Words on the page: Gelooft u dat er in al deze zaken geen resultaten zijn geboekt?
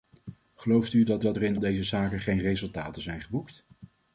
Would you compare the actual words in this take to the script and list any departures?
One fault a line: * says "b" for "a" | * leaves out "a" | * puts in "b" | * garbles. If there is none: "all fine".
* puts in "dat"
* leaves out "al"